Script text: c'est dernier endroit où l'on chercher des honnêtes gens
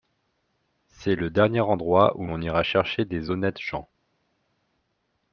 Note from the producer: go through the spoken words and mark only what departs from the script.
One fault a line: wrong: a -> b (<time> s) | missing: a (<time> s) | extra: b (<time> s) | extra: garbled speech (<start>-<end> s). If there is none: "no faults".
extra: le (1.1 s)
extra: ira (2.4 s)